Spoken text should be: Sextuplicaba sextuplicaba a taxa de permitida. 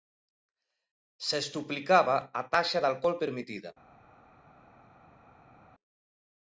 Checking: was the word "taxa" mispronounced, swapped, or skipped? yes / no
no